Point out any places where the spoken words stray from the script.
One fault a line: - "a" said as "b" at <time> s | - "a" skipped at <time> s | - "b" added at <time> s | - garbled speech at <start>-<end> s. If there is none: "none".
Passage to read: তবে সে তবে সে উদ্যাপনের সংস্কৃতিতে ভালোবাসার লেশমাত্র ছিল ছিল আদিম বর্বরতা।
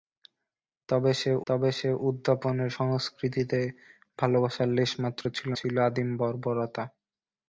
none